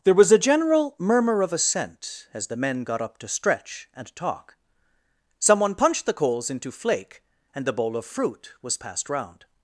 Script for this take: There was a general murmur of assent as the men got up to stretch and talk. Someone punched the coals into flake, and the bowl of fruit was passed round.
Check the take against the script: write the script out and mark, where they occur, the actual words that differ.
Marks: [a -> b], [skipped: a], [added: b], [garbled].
There was a general murmur of assent as the men got up to stretch and talk. Someone punched the coals into flake, and the bowl of fruit was passed round.